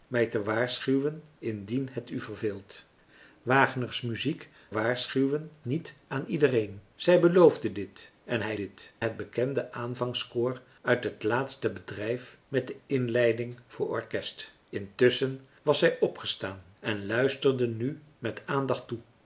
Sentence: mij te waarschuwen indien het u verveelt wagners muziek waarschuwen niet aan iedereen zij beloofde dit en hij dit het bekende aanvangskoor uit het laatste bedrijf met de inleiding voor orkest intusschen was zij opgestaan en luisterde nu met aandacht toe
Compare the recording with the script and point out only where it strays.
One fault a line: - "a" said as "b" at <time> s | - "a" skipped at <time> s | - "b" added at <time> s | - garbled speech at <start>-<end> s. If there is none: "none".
none